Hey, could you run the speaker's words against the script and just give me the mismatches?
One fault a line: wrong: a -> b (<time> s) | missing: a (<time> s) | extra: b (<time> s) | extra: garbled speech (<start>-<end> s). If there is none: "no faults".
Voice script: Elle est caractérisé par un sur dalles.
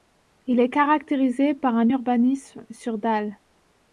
wrong: Elle -> Il (0.5 s)
extra: urbanisme (1.9 s)